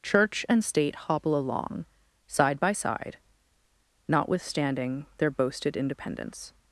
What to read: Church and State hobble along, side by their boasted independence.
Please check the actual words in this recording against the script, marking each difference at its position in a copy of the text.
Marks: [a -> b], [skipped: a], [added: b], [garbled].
Church and State hobble along, side by [added: side notwithstanding] their boasted independence.